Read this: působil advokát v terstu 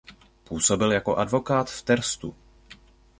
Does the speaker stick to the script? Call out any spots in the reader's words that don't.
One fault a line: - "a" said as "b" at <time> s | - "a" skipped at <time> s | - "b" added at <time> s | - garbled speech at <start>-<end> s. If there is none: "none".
- "jako" added at 0.9 s